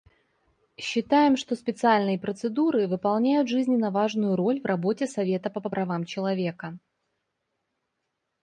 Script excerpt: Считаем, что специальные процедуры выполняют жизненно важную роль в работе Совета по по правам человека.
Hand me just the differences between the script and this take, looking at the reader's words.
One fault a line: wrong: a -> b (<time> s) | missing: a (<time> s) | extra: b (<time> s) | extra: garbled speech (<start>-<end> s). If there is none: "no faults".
no faults